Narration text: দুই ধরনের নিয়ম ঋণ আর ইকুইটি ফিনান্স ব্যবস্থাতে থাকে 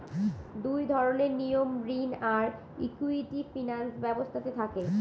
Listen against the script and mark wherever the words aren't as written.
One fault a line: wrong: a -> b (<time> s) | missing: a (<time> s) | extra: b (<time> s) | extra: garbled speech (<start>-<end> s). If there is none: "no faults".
no faults